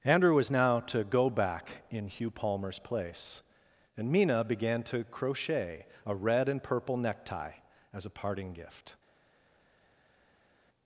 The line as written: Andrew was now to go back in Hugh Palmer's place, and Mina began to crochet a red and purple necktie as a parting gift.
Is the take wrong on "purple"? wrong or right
right